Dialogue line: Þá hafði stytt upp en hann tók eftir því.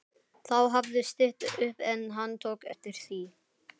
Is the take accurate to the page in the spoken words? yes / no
yes